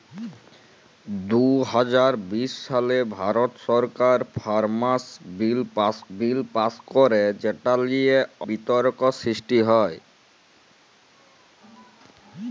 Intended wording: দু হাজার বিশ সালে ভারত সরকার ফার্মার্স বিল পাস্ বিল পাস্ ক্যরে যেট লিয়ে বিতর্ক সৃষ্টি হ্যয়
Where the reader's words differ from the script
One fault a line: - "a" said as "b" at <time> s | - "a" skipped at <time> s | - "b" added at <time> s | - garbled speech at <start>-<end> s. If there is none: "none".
none